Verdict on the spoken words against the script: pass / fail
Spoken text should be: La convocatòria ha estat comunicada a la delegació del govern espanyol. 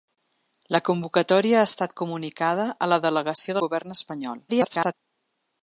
fail